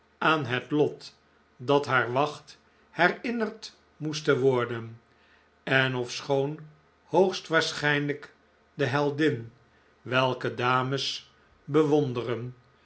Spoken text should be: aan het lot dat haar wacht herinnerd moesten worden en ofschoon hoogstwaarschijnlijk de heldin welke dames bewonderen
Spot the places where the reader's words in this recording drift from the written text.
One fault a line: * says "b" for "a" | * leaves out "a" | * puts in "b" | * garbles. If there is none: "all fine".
all fine